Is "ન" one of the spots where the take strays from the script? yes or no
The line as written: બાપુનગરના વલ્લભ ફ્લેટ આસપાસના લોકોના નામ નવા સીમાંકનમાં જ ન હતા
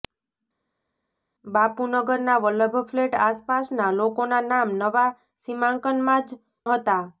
yes